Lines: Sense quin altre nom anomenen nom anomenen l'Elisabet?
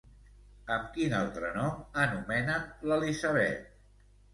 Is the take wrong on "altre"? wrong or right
right